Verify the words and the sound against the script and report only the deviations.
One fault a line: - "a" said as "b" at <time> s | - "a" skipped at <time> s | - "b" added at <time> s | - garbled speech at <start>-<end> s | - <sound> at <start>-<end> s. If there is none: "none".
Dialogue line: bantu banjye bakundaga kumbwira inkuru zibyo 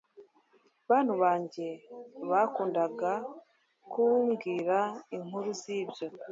none